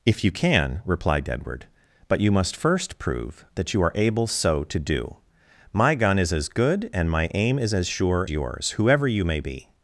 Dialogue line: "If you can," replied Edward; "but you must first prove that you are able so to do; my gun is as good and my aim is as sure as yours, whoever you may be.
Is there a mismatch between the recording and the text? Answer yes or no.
yes